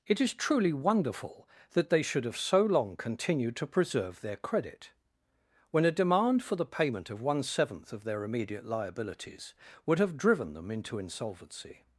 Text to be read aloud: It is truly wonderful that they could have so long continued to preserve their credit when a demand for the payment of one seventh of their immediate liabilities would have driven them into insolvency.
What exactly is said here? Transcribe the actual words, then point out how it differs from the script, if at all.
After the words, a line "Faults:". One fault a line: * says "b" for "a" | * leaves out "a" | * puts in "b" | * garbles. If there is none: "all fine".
It is truly wonderful that they should have so long continued to preserve their credit when a demand for the payment of one seventh of their immediate liabilities would have driven them into insolvency.
Faults:
* says "should" for "could"